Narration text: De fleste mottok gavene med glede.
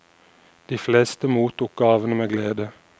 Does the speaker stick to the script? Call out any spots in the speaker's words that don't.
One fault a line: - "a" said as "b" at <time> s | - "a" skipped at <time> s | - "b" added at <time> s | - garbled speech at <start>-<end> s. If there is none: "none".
none